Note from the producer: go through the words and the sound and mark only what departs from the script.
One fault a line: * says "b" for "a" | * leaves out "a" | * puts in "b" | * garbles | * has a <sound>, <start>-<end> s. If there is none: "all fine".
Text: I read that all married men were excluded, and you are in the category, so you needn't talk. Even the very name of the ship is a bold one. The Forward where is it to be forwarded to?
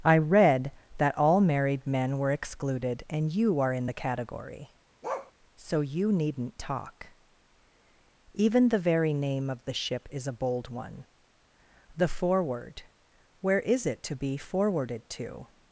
* has a bark, 5.0-5.3 s